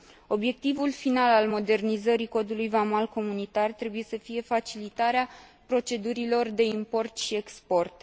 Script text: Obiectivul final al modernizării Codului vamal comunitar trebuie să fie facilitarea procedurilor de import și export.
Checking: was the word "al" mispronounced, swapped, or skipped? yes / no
no